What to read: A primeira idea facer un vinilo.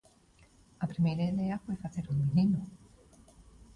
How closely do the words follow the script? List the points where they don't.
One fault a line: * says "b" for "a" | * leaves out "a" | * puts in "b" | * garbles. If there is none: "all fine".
* puts in "foi"